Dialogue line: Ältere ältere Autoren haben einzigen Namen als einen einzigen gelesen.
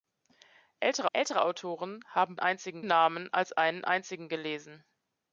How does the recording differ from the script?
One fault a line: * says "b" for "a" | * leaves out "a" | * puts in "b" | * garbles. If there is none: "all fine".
all fine